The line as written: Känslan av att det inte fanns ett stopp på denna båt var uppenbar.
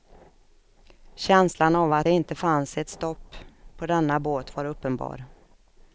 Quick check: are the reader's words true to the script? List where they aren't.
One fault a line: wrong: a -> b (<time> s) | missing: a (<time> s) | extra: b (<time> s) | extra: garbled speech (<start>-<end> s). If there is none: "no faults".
no faults